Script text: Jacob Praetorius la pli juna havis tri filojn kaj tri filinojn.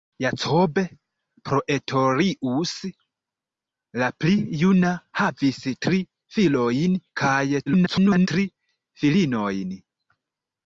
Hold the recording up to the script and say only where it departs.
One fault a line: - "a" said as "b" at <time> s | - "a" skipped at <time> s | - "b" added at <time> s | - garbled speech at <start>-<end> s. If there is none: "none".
- garbled speech at 7.7-8.3 s